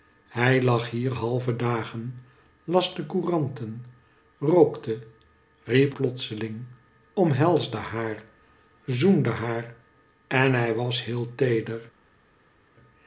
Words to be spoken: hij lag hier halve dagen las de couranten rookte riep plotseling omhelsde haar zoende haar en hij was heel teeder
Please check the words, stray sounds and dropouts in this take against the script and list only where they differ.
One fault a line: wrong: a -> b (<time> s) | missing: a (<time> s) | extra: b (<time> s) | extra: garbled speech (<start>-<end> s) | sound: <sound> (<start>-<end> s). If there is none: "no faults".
no faults